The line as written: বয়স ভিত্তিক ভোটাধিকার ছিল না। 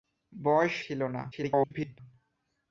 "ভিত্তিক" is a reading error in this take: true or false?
true